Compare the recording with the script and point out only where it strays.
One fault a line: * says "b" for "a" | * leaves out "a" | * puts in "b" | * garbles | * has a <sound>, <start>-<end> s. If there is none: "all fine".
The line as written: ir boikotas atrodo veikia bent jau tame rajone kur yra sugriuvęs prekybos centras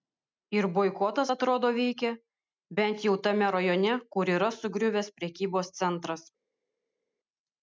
all fine